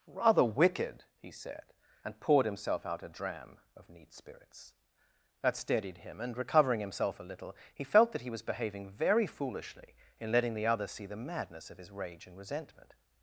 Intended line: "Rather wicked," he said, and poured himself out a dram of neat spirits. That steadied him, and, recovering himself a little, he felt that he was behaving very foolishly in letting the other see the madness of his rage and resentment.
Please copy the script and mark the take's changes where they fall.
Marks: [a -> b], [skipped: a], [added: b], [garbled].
"Rather wicked," he said, and poured himself out a dram of neat spirits. That steadied him, and, recovering himself a little, he felt that he was behaving very foolishly in letting the other see the madness of his rage and resentment.